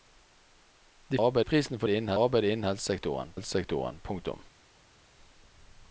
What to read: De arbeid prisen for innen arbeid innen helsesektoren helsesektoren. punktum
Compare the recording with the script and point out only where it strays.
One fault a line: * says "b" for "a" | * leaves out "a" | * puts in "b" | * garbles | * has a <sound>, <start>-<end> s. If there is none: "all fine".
all fine